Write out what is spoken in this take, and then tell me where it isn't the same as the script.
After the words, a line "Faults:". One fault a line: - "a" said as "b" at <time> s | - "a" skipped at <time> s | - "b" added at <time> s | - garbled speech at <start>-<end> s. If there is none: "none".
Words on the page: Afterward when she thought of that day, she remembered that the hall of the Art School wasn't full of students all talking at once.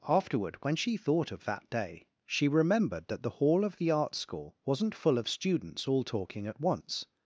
Afterward when she thought of that day, she remembered that the hall of the Art School wasn't full of students all talking at once.
Faults:
none